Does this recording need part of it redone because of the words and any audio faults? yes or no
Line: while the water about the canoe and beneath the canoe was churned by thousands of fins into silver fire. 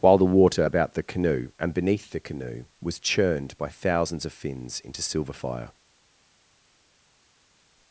no